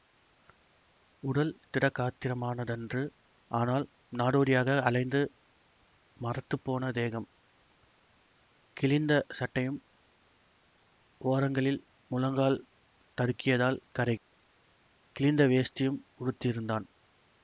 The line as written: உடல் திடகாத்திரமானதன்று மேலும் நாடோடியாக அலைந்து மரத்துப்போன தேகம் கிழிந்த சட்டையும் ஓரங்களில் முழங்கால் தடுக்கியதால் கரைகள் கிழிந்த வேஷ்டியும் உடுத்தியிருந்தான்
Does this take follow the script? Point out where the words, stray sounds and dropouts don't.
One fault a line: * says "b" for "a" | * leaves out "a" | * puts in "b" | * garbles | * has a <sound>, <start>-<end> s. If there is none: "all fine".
* says "ஆனால்" for "மேலும்"
* has a dropout, 14.2-14.3 s